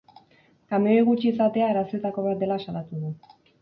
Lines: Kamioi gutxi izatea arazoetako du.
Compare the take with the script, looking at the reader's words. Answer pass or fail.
fail